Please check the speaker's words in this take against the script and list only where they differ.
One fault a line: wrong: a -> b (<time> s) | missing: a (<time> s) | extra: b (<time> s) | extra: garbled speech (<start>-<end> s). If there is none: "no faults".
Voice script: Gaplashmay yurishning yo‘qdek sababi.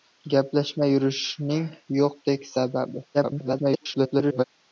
extra: garbled speech (3.1-4.4 s)